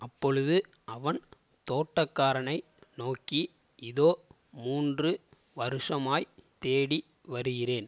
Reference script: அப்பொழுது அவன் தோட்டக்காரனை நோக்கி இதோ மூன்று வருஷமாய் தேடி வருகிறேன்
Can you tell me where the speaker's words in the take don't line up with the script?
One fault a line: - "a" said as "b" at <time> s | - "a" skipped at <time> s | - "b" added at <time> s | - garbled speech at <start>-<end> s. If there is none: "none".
none